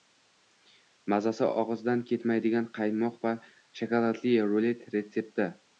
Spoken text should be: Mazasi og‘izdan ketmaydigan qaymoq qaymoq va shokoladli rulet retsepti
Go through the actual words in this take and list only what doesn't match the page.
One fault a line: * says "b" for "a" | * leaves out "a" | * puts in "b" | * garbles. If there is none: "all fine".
* leaves out "qaymoq"